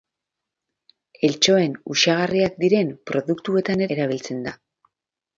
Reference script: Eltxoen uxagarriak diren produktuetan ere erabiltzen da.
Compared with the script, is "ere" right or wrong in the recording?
wrong